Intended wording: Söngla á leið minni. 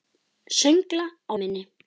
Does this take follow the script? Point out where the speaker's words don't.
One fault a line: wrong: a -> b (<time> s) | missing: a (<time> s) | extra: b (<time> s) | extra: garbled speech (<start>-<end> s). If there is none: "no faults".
missing: leið (1.3 s)